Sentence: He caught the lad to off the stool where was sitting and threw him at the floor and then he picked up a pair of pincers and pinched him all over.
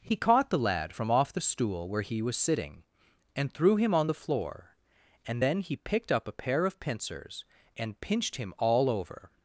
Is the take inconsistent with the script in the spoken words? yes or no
yes